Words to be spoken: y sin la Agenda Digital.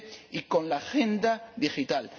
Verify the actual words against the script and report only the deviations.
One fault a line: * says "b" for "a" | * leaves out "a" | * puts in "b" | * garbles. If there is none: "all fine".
* says "con" for "sin"